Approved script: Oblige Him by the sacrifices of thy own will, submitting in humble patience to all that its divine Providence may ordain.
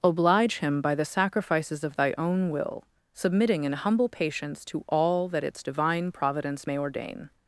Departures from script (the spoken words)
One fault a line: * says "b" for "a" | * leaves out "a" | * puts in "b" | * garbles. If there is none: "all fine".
all fine